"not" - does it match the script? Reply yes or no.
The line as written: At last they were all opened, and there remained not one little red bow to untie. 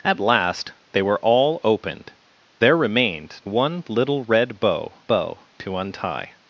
no